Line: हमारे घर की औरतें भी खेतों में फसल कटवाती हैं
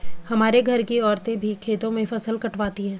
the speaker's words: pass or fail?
pass